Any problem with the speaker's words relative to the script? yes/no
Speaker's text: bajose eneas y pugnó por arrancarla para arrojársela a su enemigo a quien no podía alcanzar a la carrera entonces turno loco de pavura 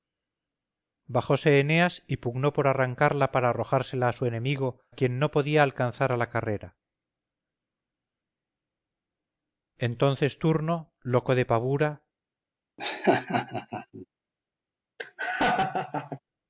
yes